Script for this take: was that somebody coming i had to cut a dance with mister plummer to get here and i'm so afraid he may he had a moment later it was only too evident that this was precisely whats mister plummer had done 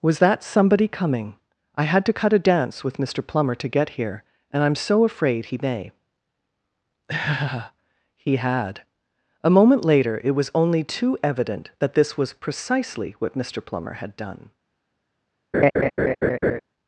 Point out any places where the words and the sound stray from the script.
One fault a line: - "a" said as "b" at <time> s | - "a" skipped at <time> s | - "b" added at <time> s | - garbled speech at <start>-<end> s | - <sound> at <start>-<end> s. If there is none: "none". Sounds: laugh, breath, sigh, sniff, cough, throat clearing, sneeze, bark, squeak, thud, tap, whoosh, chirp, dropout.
- "whats" said as "what" at 13.2 s
- laugh at 15.5-16.6 s